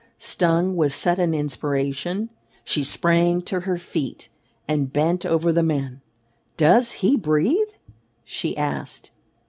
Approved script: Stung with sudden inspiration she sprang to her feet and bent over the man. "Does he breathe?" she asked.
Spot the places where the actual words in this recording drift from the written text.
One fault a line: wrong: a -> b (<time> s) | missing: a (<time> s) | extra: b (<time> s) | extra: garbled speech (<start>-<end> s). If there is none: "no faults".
no faults